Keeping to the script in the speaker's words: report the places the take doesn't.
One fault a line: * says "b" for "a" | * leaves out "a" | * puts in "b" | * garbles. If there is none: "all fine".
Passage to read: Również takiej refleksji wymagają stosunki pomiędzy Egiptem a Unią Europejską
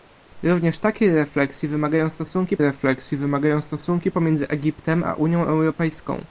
* puts in "refleksji wymagają stosunki"